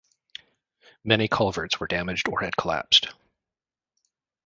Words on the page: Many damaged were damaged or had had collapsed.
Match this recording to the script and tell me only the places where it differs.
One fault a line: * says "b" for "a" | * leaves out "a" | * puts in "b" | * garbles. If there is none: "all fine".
* says "culverts" for "damaged"
* leaves out "had"